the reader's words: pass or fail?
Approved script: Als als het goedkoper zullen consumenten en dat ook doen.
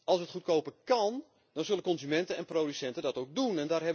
fail